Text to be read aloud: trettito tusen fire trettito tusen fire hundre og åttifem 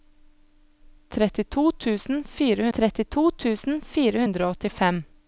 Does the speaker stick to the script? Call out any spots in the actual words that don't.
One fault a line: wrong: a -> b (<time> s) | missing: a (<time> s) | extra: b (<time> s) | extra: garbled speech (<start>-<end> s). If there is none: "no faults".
no faults